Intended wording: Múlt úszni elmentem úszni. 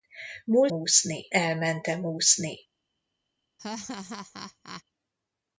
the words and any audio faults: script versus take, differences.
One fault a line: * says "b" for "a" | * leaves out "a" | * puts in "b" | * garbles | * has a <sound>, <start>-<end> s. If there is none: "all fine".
* has a laugh, 3.6-4.8 s